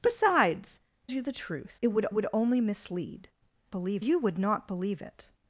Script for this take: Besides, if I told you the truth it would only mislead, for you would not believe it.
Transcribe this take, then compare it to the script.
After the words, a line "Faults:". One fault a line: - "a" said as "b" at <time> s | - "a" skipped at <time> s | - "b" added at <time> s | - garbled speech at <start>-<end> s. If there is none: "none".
Besides, you the truth it would would only mislead, believe you would not believe it.
Faults:
- "if I told" skipped at 0.8 s
- "would" added at 2.1 s
- "for" said as "believe" at 3.7 s